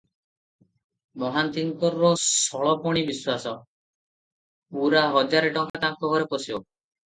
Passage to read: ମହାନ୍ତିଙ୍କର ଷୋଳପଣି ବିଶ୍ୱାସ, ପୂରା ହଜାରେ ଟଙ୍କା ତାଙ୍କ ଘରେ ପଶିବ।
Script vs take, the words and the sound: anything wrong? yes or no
yes